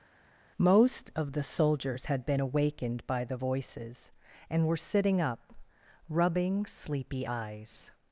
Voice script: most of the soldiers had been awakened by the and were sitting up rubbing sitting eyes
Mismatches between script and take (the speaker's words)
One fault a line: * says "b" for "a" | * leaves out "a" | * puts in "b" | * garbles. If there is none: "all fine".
* puts in "voices"
* says "sleepy" for "sitting"